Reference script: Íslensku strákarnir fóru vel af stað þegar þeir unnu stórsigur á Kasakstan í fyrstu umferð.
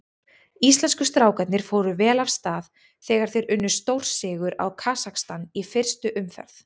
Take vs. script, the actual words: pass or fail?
pass